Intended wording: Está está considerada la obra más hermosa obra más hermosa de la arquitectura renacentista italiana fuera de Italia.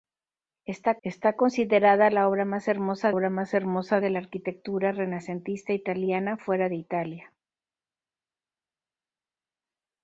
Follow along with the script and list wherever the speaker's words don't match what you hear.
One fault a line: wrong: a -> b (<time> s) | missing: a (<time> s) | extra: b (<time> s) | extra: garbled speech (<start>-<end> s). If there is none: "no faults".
no faults